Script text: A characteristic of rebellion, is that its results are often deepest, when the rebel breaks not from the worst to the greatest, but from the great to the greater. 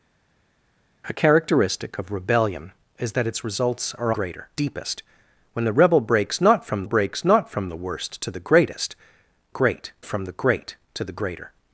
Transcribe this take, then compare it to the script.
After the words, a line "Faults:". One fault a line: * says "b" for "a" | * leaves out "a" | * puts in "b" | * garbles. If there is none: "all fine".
A characteristic of rebellion, is that its results are greater deepest, when the rebel breaks not from breaks not from the worst to the greatest, great from the great to the greater.
Faults:
* says "greater" for "often"
* puts in "breaks not from"
* says "great" for "but"